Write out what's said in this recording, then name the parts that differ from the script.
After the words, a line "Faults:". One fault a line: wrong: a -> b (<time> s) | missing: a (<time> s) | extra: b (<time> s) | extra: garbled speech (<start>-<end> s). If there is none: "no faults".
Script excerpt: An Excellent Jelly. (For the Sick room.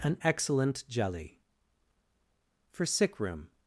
An Excellent Jelly. (For Sick room.
Faults:
missing: the (2.9 s)